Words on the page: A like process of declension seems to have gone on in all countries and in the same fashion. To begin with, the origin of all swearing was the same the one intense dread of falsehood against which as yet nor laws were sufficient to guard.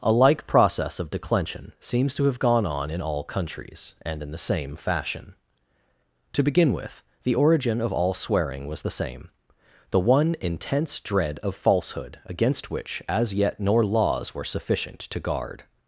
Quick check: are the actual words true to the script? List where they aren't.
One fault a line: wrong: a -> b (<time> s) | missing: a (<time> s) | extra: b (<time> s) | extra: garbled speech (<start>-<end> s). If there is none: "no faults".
no faults